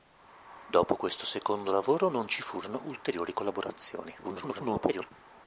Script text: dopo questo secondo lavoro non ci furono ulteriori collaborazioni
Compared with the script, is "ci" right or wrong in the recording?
right